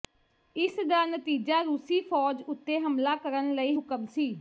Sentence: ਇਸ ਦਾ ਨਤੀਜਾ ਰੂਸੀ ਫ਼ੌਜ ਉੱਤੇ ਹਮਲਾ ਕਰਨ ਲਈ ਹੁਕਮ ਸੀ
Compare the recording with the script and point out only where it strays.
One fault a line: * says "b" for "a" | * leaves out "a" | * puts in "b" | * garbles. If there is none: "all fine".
all fine